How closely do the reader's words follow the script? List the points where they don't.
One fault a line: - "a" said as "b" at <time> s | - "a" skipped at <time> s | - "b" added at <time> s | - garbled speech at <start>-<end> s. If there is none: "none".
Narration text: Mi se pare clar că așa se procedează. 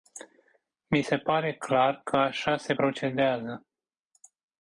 none